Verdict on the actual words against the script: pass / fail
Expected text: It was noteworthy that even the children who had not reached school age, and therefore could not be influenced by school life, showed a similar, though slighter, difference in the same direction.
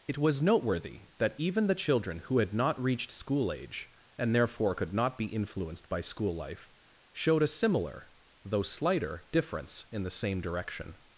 pass